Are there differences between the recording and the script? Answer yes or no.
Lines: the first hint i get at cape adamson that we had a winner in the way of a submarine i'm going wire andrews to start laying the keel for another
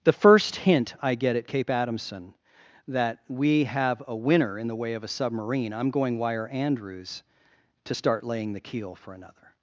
yes